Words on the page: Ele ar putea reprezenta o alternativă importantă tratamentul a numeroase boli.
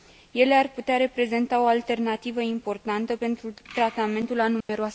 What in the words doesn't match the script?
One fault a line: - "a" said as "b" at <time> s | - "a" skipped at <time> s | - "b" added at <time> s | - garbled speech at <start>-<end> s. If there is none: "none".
- "pentru" added at 3.1 s